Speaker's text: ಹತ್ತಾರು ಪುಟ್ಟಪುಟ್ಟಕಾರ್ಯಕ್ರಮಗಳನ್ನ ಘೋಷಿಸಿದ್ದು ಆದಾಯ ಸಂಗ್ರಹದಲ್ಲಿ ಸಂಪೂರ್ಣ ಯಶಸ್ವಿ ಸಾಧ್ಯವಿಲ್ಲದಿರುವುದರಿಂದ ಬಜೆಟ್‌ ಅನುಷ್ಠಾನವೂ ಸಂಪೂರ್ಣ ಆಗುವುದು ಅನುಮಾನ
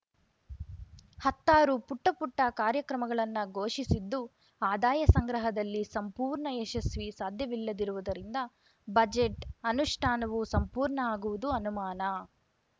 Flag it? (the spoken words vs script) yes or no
no